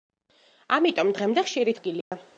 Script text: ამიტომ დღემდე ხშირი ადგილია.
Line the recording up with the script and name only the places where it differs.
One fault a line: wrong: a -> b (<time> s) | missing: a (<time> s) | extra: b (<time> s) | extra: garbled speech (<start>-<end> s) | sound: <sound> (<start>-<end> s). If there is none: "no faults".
sound: dropout (2.0-2.1 s)